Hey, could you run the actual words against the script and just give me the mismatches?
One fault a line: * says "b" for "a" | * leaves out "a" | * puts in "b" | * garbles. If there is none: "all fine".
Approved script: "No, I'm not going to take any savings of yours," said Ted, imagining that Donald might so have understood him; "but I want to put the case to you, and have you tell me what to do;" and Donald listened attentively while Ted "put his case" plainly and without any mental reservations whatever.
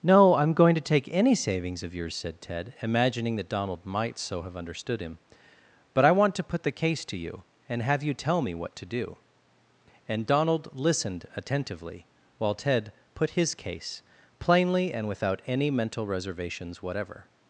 * leaves out "not"